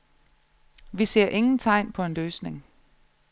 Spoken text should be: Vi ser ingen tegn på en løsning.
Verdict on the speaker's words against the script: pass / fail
pass